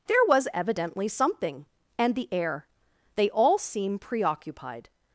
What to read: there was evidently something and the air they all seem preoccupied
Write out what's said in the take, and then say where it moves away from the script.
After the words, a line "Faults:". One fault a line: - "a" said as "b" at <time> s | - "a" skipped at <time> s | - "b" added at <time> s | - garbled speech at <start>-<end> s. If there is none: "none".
there was evidently something and the air they all seem preoccupied
Faults:
none